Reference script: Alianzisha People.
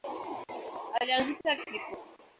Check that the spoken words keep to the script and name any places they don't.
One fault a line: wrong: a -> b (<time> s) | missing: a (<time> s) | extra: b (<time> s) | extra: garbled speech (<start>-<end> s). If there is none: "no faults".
no faults